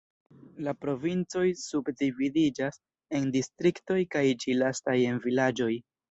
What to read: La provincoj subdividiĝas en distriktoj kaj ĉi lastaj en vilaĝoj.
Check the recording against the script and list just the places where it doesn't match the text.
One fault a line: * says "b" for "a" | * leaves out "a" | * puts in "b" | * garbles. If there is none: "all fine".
all fine